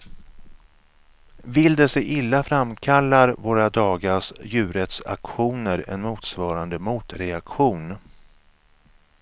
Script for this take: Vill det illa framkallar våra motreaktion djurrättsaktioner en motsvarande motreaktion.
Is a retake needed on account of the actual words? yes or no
yes